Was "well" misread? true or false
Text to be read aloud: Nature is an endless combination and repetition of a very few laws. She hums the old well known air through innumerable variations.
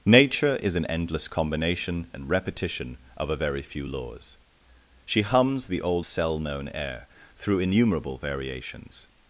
true